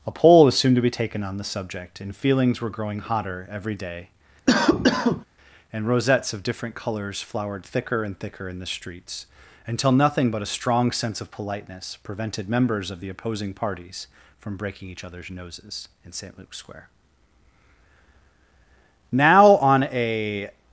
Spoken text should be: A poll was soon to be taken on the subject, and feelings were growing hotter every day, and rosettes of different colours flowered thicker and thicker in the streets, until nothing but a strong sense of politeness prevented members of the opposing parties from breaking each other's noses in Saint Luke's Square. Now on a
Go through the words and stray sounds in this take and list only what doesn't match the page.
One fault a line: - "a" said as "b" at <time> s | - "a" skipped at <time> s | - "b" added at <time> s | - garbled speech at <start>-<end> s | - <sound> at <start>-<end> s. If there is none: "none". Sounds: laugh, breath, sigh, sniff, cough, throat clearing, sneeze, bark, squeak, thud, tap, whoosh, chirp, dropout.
- cough at 4.5-5.2 s